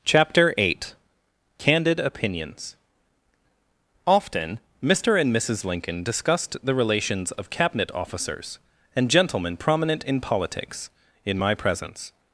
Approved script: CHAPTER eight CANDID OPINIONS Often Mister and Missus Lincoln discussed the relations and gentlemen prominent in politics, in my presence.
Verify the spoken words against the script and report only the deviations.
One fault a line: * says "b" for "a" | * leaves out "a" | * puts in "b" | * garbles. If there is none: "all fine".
* puts in "of Cabinet officers"